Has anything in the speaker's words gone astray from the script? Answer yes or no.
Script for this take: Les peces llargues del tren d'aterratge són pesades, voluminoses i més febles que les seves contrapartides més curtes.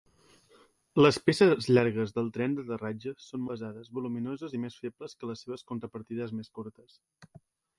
no